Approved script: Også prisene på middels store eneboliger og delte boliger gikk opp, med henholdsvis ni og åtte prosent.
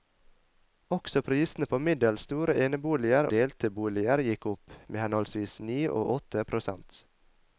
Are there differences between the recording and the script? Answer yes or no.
yes